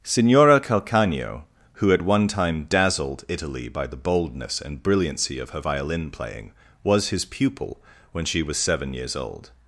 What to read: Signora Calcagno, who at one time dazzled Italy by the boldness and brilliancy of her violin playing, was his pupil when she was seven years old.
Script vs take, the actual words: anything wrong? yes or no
no